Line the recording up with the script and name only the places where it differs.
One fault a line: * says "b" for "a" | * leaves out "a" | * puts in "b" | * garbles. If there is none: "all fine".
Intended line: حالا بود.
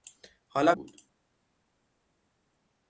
all fine